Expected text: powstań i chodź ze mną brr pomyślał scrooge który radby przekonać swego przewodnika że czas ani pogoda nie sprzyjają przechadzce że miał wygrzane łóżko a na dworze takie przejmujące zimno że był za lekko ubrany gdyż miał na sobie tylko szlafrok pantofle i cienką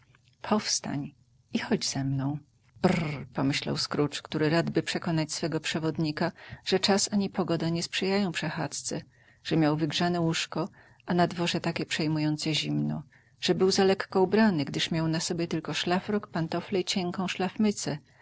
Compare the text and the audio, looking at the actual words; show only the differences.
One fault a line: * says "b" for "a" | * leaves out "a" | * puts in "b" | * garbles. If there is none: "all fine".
all fine